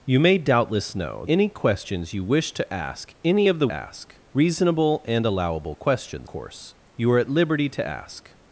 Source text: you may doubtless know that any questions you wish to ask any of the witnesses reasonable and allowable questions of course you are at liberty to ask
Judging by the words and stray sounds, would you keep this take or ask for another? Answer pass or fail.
fail